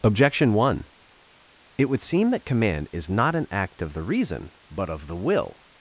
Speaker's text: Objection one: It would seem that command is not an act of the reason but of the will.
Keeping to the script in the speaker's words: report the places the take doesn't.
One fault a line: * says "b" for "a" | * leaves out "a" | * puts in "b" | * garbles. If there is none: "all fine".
all fine